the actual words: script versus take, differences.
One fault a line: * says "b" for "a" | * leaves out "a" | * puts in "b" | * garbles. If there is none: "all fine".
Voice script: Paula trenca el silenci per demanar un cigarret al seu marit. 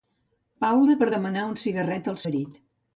* leaves out "trenca el silenci"
* leaves out "seu"